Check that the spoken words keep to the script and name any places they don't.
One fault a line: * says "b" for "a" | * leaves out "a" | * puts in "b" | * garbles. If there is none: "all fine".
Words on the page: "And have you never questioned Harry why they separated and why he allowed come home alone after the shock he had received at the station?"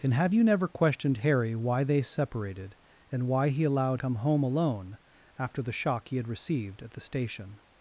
all fine